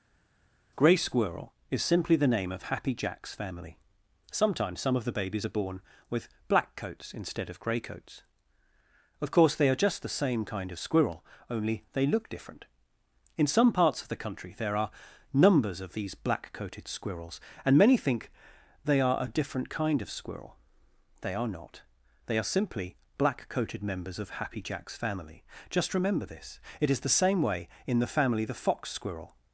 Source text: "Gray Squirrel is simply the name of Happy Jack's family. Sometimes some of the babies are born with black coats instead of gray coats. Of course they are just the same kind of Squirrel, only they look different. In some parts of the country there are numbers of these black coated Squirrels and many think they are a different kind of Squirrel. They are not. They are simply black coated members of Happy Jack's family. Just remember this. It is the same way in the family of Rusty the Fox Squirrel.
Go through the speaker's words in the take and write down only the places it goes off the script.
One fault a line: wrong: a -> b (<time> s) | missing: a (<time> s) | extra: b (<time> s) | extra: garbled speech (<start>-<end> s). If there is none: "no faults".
missing: of Rusty (28.4 s)